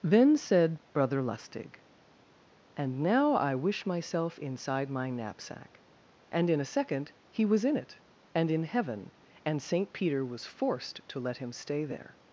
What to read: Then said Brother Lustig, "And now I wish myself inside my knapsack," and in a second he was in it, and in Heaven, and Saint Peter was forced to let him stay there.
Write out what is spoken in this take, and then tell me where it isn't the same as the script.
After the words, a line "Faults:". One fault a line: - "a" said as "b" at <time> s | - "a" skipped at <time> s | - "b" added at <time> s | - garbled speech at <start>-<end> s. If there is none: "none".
Then said Brother Lustig, "And now I wish myself inside my knapsack," and in a second he was in it, and in Heaven, and Saint Peter was forced to let him stay there.
Faults:
none